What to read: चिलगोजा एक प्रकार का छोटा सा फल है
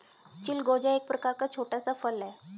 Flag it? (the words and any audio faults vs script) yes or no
no